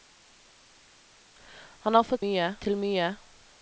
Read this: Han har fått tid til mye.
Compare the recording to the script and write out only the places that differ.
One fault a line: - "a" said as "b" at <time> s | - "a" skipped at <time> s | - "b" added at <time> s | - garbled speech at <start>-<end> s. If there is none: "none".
- "tid" said as "mye" at 2.2 s